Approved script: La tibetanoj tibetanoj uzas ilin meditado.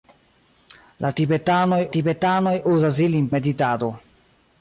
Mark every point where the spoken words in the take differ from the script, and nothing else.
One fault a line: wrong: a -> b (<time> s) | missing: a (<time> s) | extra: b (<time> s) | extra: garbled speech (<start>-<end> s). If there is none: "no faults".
no faults